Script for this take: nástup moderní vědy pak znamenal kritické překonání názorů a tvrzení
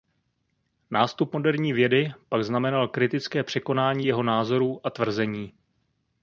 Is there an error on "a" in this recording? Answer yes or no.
no